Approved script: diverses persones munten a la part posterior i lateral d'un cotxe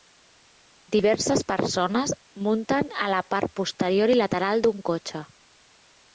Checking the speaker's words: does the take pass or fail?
pass